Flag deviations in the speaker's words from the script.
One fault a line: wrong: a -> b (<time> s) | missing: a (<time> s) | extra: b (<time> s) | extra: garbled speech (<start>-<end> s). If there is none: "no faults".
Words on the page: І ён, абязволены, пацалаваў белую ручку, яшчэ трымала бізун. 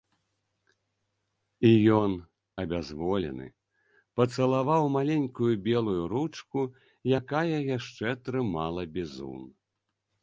extra: маленькую (5.0 s)
extra: якая (7.2 s)